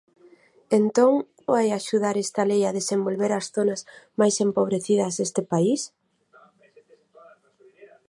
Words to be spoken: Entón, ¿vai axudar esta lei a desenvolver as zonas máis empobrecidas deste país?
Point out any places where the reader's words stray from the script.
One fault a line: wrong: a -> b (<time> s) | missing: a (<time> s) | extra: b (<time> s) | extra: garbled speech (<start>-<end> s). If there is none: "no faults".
no faults